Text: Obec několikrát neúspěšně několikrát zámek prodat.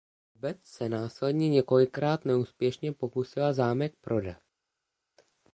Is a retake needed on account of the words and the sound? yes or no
yes